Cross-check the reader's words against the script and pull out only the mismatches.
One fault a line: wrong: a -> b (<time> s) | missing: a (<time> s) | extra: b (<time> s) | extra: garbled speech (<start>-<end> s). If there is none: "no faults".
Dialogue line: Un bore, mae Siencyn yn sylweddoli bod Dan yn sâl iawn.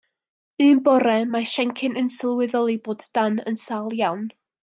no faults